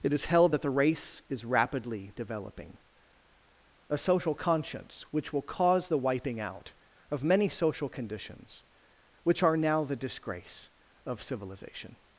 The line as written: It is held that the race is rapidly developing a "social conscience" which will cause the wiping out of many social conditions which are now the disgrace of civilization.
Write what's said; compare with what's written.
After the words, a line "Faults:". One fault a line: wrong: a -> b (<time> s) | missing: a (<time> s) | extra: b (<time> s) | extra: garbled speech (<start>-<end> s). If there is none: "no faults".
It is held that the race is rapidly developing a "social conscience" which will cause the wiping out of many social conditions which are now the disgrace of civilization.
Faults:
no faults